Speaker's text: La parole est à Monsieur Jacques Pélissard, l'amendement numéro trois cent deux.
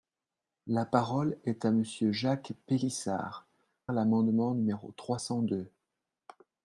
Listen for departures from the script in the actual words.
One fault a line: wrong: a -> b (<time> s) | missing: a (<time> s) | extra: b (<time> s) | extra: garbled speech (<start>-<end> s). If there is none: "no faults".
no faults